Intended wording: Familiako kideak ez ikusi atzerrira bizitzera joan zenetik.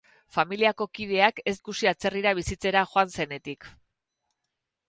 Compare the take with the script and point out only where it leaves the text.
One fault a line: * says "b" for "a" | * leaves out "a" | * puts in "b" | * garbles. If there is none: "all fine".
all fine